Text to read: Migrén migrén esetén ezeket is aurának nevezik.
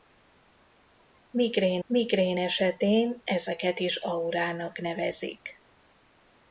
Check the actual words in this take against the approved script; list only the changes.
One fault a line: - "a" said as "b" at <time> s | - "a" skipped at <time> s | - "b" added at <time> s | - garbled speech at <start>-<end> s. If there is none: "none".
none